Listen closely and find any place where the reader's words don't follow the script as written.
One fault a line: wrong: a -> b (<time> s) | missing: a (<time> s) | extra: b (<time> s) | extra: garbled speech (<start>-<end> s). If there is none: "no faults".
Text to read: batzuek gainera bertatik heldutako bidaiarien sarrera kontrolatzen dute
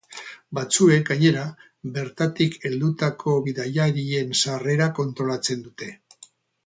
no faults